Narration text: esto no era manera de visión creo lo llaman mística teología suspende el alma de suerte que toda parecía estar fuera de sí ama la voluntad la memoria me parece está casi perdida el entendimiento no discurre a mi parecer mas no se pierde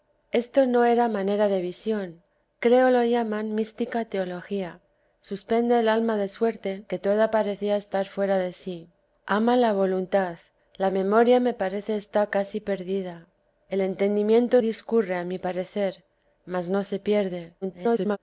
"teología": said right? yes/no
yes